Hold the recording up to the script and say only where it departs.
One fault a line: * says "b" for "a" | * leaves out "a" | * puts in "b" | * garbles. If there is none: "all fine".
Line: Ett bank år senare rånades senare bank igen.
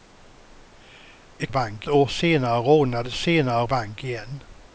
all fine